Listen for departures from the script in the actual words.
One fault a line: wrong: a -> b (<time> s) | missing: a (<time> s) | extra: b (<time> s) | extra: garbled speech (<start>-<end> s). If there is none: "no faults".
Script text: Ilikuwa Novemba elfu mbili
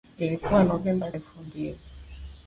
no faults